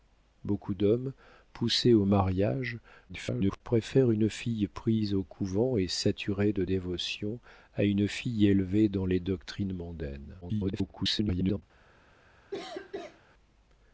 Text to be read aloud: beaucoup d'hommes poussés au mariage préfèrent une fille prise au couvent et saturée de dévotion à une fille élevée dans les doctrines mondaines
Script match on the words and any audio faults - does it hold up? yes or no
no